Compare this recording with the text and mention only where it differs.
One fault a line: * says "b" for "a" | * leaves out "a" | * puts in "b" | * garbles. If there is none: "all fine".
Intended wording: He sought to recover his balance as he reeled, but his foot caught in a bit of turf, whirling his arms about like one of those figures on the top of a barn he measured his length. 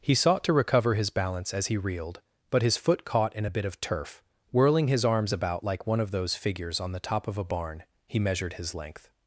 all fine